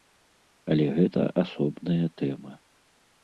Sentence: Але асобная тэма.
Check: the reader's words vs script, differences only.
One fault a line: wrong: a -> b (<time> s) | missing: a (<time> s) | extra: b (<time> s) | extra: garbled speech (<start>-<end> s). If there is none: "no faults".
extra: гэта (0.9 s)